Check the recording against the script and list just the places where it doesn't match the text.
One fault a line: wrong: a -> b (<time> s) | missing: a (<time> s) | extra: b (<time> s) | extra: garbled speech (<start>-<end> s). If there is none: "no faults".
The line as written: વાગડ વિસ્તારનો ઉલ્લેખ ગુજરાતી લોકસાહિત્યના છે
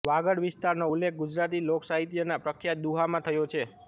extra: પ્રખ્યાત દુહામાં થયો (2.4 s)